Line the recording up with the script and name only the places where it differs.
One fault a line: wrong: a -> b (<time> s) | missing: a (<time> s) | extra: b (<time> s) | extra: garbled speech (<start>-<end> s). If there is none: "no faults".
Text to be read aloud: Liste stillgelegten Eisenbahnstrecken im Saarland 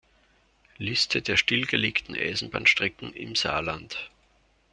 extra: der (1.2 s)